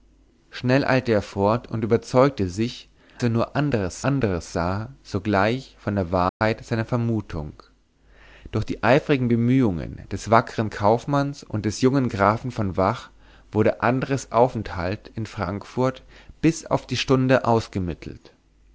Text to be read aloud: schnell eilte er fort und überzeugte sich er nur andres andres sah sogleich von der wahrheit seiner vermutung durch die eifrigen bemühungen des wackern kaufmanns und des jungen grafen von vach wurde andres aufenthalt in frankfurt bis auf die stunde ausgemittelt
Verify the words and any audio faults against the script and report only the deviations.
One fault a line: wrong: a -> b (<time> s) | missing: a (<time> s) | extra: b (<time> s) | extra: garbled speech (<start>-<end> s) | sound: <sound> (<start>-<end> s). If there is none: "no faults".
sound: dropout (6.3-6.4 s)